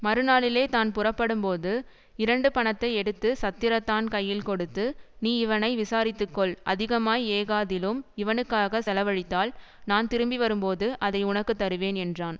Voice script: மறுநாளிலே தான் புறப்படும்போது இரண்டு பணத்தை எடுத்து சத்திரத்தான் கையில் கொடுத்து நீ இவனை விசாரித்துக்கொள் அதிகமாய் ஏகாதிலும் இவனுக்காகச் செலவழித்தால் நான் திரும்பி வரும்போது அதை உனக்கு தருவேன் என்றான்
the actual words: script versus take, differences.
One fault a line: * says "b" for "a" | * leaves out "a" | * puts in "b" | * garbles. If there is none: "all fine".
all fine